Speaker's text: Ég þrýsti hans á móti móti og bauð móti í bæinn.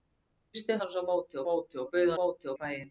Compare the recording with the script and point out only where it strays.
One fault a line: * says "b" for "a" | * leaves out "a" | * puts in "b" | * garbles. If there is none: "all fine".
all fine